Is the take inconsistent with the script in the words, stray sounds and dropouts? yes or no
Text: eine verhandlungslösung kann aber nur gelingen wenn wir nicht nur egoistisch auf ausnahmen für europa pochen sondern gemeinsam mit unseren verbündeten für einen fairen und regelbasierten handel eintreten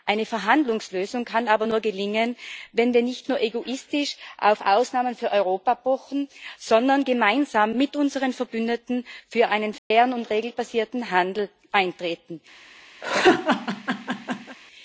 yes